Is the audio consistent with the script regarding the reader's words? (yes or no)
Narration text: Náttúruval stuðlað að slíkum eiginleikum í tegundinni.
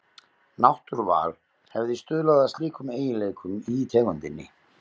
no